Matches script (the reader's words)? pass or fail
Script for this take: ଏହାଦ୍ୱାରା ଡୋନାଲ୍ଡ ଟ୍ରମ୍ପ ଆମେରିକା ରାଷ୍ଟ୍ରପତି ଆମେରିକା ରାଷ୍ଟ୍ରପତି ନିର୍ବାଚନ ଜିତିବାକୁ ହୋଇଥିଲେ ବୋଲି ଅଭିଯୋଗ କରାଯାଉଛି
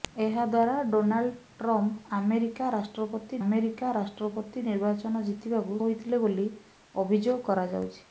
pass